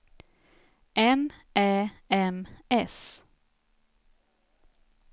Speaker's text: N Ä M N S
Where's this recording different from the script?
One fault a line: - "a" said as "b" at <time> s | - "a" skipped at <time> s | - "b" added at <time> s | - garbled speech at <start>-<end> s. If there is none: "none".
- "N" skipped at 2.5 s